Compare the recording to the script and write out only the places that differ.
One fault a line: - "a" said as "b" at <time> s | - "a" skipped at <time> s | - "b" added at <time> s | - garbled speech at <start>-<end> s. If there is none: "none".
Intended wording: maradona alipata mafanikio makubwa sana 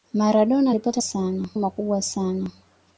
- "mafanikio" said as "sana" at 1.0 s